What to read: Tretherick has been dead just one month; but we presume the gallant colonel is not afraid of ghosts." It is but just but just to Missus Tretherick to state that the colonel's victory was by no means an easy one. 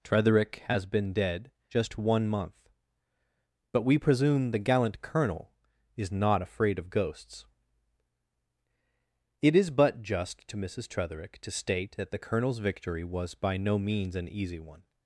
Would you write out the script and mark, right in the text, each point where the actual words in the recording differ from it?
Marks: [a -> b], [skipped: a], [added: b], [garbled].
Tretherick has been dead just one month; but we presume the gallant colonel is not afraid of ghosts." It is but just [skipped: but just] to Missus Tretherick to state that the colonel's victory was by no means an easy one.